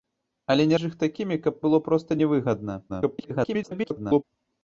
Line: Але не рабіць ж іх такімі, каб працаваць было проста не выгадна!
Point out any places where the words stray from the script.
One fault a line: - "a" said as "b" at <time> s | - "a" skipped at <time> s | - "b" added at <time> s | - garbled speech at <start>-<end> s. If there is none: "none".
- "рабіць" skipped at 0.8 s
- "працаваць" skipped at 1.6 s
- garbled speech at 2.9-4.2 s